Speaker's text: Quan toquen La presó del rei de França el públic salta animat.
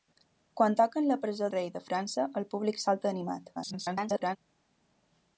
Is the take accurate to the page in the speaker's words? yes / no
no